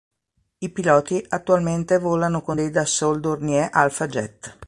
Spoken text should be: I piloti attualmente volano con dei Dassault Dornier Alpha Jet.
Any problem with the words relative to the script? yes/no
no